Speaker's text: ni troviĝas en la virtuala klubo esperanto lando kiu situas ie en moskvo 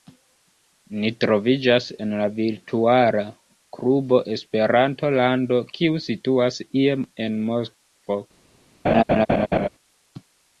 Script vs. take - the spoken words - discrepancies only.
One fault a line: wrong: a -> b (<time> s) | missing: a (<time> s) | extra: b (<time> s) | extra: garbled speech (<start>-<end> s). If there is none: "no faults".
no faults